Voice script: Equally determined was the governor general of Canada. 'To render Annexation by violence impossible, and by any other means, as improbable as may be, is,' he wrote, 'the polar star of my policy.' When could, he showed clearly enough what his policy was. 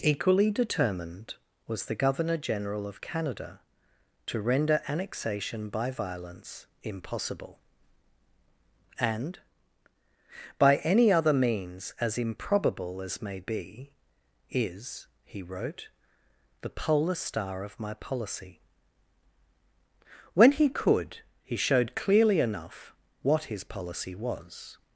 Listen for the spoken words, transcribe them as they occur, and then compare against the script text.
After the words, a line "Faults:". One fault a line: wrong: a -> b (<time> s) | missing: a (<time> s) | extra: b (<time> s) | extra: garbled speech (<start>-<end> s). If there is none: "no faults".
Equally determined was the governor general of Canada. 'To render Annexation by violence impossible, and by any other means, as improbable as may be, is,' he wrote, 'the polar star of my policy.' When he could, he showed clearly enough what his policy was.
Faults:
extra: he (20.5 s)